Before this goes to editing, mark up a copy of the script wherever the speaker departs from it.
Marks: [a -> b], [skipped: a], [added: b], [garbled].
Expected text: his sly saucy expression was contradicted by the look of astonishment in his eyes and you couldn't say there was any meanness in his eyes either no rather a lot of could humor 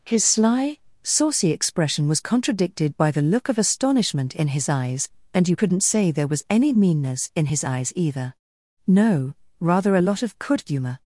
his sly saucy expression was contradicted by the look of astonishment in his eyes and you couldn't say there was any meanness in his eyes either no rather a lot of could humor